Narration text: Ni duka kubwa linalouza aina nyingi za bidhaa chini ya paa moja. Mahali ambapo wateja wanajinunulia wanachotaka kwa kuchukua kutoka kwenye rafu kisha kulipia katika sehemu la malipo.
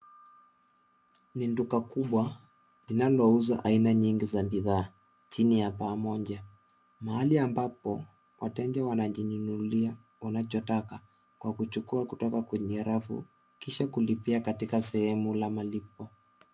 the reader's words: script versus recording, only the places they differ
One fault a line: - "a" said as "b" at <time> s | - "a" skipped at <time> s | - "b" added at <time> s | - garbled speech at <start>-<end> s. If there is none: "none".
none